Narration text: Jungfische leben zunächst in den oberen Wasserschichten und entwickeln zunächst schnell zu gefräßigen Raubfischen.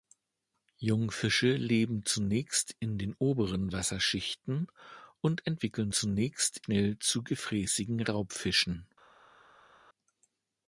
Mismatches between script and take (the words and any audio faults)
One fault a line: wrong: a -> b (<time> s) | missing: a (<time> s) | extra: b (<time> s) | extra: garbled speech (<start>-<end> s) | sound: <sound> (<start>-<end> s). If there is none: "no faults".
no faults